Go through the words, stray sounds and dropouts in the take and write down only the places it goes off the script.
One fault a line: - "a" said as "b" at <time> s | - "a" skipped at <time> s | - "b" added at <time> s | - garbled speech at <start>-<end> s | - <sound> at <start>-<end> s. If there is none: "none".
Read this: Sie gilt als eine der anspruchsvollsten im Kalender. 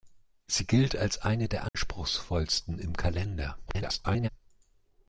- dropout at 1.7-1.7 s
- garbled speech at 3.7-4.3 s